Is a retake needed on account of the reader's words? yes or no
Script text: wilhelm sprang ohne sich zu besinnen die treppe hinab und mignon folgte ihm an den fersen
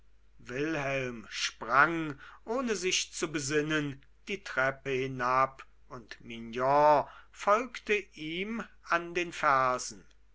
no